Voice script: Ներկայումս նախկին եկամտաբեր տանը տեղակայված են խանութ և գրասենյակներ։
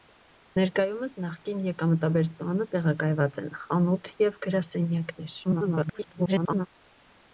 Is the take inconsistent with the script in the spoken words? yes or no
yes